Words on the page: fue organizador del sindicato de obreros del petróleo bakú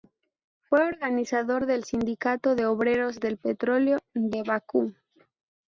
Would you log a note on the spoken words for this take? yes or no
yes